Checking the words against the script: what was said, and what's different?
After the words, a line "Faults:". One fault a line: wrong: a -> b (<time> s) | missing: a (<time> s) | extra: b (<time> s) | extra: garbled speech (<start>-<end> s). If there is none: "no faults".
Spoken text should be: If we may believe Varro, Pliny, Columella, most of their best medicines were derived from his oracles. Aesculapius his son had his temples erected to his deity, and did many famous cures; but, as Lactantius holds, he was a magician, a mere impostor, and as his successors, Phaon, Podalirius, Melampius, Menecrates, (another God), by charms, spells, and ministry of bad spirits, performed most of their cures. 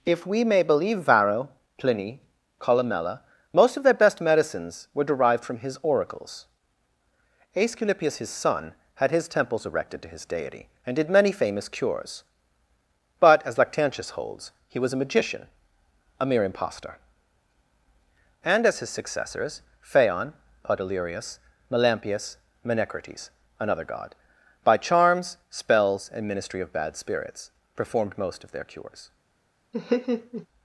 If we may believe Varro, Pliny, Columella, most of their best medicines were derived from his oracles. Aesculapius his son had his temples erected to his deity, and did many famous cures; but, as Lactantius holds, he was a magician, a mere impostor, and as his successors, Phaon, Podalirius, Melampius, Menecrates, (another God), by charms, spells, and ministry of bad spirits, performed most of their cures.
Faults:
no faults